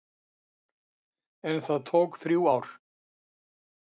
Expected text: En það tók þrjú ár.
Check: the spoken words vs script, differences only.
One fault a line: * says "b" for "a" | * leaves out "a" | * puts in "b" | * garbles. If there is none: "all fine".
all fine